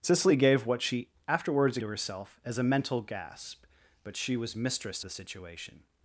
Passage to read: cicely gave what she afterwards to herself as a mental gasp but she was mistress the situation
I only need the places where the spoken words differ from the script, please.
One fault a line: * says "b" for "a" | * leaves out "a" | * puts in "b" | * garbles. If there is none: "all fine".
all fine